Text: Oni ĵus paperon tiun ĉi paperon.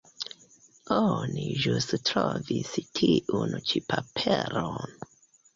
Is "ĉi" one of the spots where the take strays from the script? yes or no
no